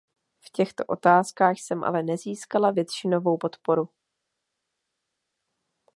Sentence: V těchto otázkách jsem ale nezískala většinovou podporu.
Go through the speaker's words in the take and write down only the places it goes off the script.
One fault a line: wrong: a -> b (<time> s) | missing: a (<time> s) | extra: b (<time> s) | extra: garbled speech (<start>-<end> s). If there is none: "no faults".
no faults